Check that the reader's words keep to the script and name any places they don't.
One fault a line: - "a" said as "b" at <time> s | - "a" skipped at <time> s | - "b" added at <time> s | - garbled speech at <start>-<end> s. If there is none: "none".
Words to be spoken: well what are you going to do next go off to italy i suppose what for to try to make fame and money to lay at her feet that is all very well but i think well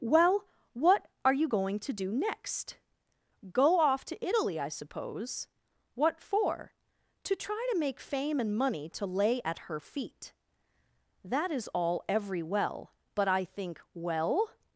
- "very" said as "every" at 12.1 s